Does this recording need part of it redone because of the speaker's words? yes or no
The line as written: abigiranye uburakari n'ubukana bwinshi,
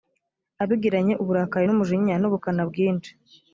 yes